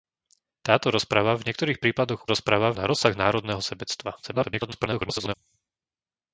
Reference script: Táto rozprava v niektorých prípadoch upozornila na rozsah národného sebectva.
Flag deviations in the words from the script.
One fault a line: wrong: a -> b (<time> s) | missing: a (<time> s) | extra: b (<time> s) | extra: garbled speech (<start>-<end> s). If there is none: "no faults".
wrong: upozornila -> rozprava (2.2 s)
extra: garbled speech (4.2-5.3 s)